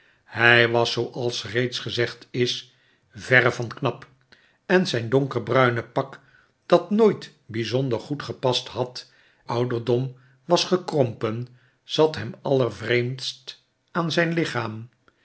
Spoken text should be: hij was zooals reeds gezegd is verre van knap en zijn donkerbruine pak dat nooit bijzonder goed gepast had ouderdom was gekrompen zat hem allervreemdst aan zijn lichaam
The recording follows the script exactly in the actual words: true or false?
true